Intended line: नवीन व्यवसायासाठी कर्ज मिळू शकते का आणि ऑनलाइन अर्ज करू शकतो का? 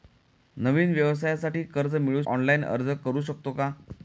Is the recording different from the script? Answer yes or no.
yes